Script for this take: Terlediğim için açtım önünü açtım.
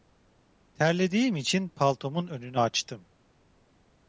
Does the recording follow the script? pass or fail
fail